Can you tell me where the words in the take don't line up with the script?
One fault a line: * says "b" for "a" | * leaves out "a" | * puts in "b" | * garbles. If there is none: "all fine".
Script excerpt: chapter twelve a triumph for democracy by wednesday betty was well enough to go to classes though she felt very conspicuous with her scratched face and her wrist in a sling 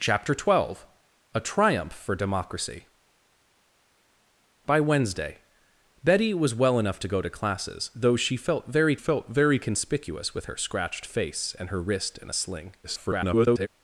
* puts in "felt very"
* garbles